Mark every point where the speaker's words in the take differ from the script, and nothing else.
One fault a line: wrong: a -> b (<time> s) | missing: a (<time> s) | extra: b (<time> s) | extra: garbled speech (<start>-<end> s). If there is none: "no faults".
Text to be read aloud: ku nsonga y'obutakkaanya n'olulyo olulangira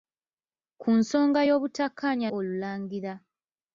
missing: n'olulyo (2.3 s)